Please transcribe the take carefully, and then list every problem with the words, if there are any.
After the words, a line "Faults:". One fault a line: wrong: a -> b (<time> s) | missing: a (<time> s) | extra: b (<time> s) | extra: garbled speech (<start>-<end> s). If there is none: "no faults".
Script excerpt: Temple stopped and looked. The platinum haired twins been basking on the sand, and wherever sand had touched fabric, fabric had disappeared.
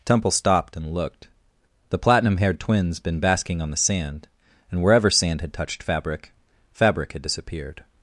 Temple stopped and looked. The platinum haired twins been basking on the sand, and wherever sand had touched fabric, fabric had disappeared.
Faults:
no faults